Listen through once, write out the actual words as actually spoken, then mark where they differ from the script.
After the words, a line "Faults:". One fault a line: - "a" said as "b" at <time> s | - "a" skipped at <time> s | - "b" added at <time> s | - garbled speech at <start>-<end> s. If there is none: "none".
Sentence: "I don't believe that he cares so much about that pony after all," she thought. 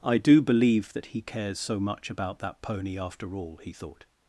"I do believe that he cares so much about that pony after all," he thought.
Faults:
- "don't" said as "do" at 0.2 s
- "she" said as "he" at 3.6 s